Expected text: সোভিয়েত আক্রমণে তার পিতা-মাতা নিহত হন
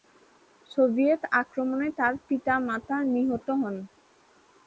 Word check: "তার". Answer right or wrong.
right